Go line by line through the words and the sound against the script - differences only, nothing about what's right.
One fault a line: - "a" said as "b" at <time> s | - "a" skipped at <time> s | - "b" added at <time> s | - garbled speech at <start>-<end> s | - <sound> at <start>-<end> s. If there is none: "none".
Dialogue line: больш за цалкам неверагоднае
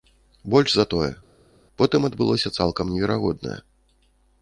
- "тое потым адбылося" added at 0.9 s